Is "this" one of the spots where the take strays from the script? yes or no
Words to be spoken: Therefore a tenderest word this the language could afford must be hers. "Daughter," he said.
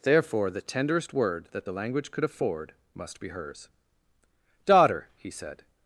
yes